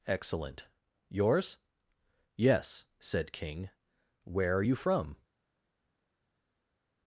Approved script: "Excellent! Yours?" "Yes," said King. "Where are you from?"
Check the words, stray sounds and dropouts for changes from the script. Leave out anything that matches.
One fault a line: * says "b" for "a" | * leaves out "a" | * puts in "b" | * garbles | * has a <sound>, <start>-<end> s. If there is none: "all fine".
all fine